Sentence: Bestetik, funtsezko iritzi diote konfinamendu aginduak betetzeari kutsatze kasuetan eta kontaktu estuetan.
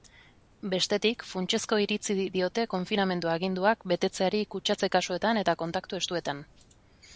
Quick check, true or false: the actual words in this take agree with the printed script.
true